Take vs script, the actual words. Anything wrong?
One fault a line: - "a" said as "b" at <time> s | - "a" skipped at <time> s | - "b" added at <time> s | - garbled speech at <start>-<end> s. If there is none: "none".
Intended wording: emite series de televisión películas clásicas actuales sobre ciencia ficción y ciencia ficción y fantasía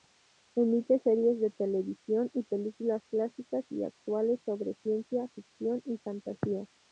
- "y" added at 2.3 s
- "y" added at 3.7 s
- "ciencia ficción y" skipped at 6.0 s